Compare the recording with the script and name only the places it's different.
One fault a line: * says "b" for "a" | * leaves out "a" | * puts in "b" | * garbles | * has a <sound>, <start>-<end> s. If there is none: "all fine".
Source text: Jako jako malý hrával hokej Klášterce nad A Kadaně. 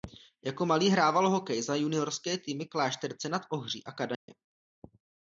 * leaves out "jako"
* puts in "za juniorské týmy"
* puts in "Ohří"
* has a dropout, 4.1-4.3 s